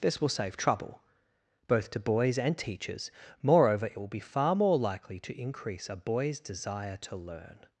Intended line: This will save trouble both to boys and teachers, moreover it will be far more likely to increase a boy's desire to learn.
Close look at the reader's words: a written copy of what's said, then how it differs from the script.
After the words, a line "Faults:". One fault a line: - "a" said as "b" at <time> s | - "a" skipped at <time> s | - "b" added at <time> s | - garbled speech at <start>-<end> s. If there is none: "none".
This will save trouble both to boys and teachers, moreover it will be far more likely to increase a boy's desire to learn.
Faults:
none